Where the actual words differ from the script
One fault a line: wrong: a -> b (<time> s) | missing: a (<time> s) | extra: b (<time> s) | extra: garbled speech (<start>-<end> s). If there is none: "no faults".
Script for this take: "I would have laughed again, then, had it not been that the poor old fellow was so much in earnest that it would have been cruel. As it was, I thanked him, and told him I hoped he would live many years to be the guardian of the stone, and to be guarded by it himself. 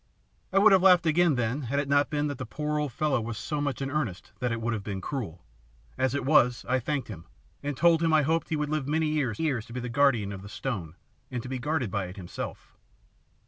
extra: years (9.4 s)